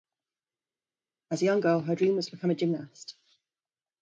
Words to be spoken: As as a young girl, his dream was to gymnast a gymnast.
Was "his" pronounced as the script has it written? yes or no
no